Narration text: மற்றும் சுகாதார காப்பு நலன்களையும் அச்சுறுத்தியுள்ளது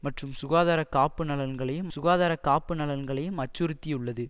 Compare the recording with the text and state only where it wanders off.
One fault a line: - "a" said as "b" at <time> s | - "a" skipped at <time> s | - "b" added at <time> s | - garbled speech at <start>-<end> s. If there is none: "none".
- "சுகாதார காப்பு நலன்களையும்" added at 1.9 s